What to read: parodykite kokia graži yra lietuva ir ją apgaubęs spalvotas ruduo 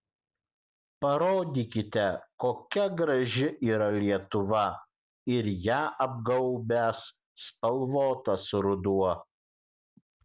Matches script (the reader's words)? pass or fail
pass